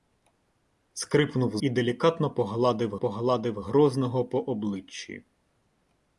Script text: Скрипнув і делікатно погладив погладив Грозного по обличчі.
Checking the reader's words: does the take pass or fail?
pass